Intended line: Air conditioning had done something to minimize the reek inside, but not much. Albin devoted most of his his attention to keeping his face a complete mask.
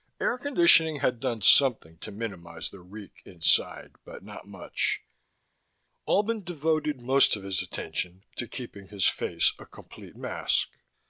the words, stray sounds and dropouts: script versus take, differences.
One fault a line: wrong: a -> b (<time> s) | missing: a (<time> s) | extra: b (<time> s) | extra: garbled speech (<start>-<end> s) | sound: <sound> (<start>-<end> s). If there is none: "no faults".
missing: his (7.6 s)